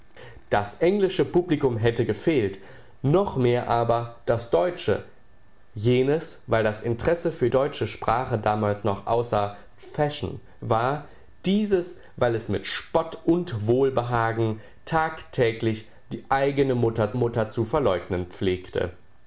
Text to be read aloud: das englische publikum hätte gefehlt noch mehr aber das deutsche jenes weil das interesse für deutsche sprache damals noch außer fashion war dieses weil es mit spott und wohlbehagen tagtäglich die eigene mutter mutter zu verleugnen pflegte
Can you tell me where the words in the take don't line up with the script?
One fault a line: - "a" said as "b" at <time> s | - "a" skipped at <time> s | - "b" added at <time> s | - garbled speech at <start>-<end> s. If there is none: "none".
none